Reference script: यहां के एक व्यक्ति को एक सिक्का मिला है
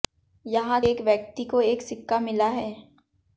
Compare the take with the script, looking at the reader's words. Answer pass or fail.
fail